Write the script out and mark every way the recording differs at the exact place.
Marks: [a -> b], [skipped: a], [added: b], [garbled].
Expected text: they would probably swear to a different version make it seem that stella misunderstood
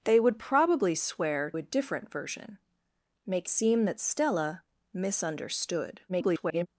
they would probably swear [skipped: to] a different version make [skipped: it] seem that stella misunderstood [garbled]